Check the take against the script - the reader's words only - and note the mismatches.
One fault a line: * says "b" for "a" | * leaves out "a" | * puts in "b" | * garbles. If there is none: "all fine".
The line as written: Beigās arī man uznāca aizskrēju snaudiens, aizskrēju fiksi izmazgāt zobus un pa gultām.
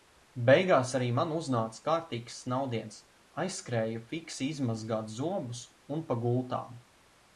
* says "kārtīgs" for "aizskrēju"